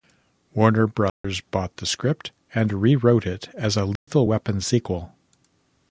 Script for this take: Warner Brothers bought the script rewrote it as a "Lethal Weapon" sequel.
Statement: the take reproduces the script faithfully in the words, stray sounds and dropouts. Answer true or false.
false